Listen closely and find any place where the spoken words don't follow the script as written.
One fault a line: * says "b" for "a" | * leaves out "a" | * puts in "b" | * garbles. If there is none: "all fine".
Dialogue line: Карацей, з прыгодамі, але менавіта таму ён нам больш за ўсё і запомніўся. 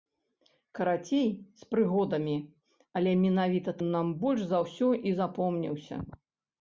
* leaves out "таму"